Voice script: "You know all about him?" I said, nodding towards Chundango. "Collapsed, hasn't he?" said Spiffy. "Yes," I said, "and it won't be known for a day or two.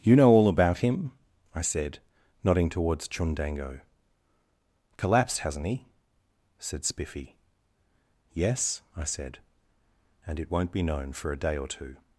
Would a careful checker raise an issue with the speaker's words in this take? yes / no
no